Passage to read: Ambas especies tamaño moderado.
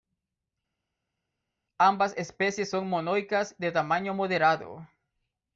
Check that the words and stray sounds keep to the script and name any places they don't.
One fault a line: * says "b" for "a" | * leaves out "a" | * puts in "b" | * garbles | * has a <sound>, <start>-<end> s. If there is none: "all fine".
* puts in "son monoicas de"